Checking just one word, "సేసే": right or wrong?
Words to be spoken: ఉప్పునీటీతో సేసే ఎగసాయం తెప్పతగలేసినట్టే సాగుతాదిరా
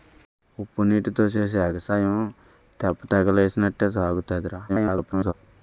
right